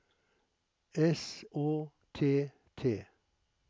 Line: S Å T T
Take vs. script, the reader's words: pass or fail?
pass